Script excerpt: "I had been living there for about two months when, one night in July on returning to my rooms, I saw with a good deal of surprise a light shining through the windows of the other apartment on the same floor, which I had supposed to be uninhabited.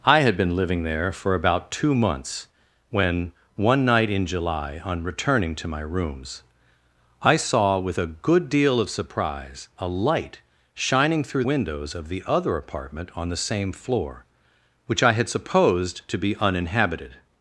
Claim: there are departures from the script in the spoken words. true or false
true